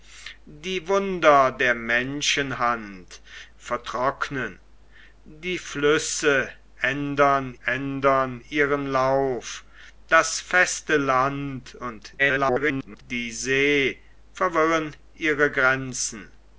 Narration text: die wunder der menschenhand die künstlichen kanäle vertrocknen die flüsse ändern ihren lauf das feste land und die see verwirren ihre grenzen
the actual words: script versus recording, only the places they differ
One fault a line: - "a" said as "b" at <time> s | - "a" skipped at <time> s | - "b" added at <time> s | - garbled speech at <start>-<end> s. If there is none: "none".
- "die künstlichen kanäle" skipped at 3.2 s
- "ändern" added at 7.6 s
- garbled speech at 12.2-13.0 s